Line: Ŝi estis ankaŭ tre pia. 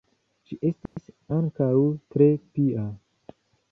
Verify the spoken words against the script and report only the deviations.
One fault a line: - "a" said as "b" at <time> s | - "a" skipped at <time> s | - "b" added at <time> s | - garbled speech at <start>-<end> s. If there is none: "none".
none